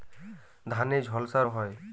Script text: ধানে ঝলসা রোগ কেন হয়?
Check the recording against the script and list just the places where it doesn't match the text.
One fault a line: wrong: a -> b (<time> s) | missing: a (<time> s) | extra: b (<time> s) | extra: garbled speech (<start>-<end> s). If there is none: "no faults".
missing: রোগ কেন (1.4 s)